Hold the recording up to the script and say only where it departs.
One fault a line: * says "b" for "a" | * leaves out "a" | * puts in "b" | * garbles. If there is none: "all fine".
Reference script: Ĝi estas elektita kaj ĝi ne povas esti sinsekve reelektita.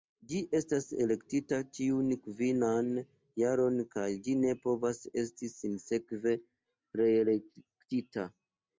* puts in "ĉiun kvinan jaron"